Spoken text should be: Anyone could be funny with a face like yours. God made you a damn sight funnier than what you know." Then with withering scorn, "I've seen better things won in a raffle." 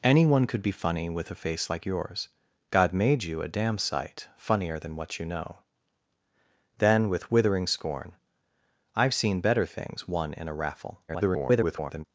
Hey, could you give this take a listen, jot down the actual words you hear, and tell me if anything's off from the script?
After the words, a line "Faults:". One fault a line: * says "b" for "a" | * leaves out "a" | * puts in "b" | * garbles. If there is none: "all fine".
Anyone could be funny with a face like yours. God made you a damn sight funnier than what you know." Then with withering scorn, "I've seen better things won in a raffle." [garbled]
Faults:
* garbles